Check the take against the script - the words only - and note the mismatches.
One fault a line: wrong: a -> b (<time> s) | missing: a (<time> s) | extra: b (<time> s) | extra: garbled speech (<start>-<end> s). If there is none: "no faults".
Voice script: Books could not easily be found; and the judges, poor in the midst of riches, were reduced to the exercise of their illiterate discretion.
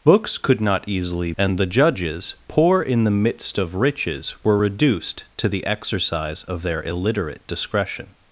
missing: be found (1.3 s)